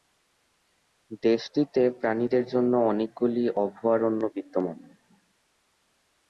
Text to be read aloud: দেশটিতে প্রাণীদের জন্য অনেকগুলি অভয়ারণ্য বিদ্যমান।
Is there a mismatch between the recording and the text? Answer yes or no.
no